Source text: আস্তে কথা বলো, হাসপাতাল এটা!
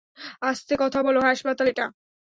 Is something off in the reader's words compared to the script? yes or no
no